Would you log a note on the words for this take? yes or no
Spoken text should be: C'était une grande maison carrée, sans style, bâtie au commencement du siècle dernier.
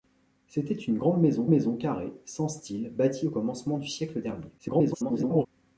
yes